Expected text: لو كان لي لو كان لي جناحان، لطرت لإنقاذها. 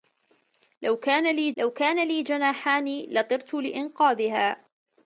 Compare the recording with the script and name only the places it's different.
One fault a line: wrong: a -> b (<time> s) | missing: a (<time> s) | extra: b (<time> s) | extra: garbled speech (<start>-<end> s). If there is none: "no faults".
no faults